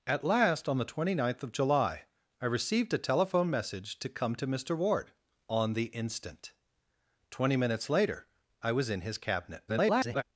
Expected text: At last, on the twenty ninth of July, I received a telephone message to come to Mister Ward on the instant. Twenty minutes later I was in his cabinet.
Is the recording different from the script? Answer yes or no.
yes